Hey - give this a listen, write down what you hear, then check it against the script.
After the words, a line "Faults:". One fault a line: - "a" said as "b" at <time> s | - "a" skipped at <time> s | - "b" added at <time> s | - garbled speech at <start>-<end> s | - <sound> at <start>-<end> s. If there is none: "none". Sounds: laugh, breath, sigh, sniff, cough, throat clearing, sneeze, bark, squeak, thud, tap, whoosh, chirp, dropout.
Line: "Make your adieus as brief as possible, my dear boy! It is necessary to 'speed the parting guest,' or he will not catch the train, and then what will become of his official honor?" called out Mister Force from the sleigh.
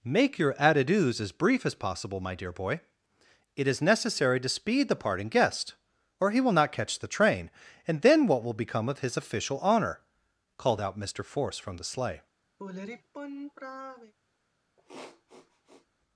"Make your adieus as brief as possible, my dear boy! It is necessary to 'speed the parting guest,' or he will not catch the train, and then what will become of his official honor?" called out Mister Force from the sleigh.
Faults:
- sigh at 12.6-14.1 s
- sniff at 14.8-15.9 s